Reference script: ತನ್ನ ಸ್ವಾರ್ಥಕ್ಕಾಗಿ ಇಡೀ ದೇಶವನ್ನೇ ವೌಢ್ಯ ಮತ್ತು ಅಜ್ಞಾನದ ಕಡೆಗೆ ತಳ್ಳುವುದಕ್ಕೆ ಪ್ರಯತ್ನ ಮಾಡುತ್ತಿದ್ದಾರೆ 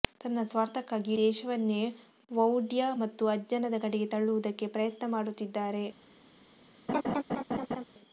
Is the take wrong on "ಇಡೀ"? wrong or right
wrong